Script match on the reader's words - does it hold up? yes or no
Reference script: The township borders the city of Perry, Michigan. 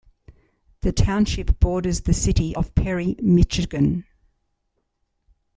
yes